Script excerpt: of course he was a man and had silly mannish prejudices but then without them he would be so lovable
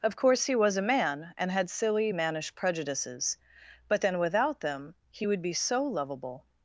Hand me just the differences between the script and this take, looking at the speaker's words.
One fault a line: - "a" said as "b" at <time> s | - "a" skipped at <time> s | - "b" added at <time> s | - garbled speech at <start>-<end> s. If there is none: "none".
none